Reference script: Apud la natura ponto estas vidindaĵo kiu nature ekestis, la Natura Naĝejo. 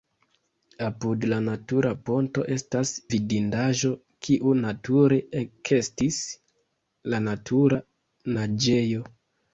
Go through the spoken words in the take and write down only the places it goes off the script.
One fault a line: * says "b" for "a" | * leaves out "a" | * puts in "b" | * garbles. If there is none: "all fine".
all fine